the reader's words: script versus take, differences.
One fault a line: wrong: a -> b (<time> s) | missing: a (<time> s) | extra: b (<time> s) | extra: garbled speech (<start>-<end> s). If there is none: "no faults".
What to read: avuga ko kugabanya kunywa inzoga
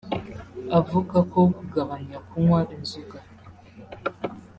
no faults